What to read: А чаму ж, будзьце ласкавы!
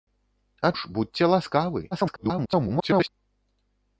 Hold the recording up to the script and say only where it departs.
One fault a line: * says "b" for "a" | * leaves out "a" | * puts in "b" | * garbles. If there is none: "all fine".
* leaves out "чаму"
* garbles